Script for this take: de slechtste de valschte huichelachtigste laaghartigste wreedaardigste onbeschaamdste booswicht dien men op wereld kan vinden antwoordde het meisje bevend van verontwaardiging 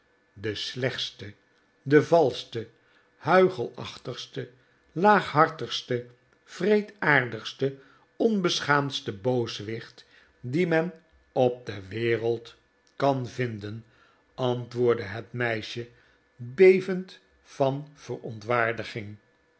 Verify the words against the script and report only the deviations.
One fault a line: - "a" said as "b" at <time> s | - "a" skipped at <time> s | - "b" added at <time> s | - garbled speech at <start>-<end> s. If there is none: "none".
- "de" added at 11.7 s